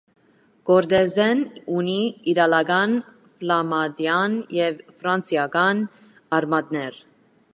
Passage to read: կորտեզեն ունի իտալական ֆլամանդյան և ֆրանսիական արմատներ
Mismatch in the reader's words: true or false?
false